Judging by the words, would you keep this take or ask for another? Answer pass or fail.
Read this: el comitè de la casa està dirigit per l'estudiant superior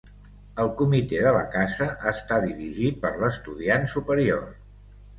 pass